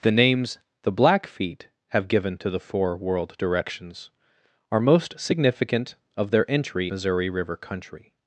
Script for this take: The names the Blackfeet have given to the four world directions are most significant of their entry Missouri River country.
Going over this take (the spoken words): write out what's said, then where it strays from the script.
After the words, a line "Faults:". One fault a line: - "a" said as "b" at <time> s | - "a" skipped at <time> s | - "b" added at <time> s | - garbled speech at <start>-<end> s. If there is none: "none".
The names the Blackfeet have given to the four world directions are most significant of their entry Missouri River country.
Faults:
none